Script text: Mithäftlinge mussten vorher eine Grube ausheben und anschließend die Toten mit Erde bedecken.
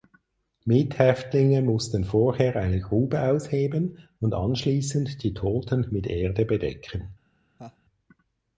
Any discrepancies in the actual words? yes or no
no